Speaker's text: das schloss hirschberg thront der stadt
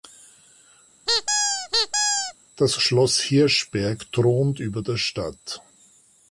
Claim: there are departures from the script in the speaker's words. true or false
true